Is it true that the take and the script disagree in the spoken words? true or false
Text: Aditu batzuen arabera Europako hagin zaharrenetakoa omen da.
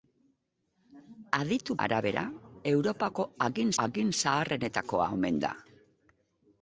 true